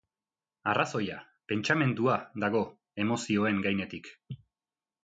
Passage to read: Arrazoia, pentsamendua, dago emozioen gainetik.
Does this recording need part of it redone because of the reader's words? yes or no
no